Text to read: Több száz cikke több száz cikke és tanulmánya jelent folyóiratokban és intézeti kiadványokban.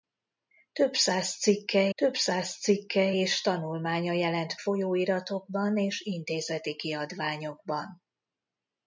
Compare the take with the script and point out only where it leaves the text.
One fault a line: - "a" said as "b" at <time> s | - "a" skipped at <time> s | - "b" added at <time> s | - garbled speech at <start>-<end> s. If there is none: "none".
none